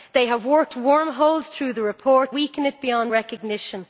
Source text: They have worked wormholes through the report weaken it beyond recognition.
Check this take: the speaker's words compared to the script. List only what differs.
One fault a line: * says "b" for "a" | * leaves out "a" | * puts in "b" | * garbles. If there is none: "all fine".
all fine